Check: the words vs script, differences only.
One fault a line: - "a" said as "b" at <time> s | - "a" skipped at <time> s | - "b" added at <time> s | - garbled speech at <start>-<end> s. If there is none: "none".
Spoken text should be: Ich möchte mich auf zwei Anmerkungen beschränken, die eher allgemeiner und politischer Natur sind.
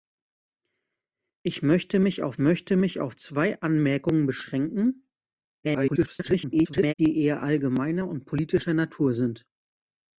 - "möchte mich auf" added at 2.4 s
- garbled speech at 5.6-6.9 s